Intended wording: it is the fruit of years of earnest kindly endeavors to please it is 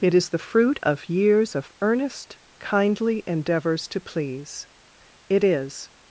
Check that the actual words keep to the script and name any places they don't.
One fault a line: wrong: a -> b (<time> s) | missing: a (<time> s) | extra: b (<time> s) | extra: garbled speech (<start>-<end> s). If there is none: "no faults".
no faults